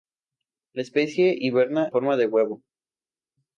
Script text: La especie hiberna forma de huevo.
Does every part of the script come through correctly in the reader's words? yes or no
yes